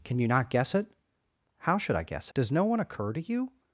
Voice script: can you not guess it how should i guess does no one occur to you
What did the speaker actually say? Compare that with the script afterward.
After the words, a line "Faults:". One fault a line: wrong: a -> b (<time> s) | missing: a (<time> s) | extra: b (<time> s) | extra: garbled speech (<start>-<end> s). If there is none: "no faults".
can you not guess it how should i guess does no one occur to you
Faults:
no faults